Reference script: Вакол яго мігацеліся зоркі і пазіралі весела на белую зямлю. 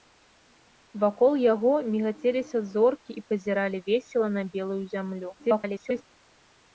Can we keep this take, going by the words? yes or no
no